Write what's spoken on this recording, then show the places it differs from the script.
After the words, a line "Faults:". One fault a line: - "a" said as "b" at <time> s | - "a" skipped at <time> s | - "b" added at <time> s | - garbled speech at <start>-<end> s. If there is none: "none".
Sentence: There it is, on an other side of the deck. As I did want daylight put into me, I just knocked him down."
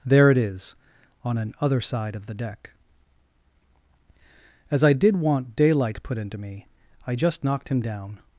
There it is, on an other side of the deck. As I did want daylight put into me, I just knocked him down."
Faults:
none